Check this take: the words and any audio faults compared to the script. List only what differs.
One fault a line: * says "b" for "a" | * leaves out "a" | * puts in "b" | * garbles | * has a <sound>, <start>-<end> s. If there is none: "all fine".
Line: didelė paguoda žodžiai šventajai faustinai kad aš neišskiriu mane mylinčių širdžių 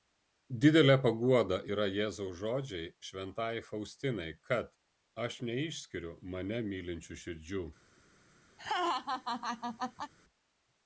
* puts in "yra jėzaus"
* has a laugh, 8.6-10.1 s